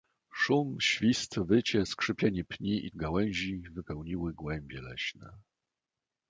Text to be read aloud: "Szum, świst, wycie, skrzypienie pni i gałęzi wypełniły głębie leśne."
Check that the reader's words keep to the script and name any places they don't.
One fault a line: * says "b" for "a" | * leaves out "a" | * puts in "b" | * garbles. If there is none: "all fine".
all fine